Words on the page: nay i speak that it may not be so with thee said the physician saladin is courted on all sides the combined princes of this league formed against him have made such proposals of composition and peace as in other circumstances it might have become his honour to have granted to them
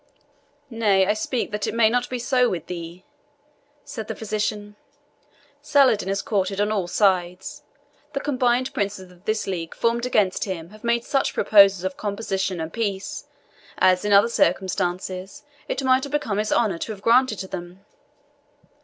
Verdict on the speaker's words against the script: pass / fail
pass